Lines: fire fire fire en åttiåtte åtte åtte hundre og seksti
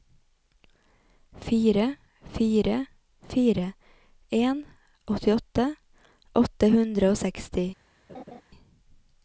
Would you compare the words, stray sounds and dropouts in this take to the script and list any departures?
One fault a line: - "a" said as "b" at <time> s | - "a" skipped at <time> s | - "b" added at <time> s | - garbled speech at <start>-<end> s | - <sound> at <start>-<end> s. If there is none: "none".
- "åtte" skipped at 6.7 s
- laugh at 8.1-8.4 s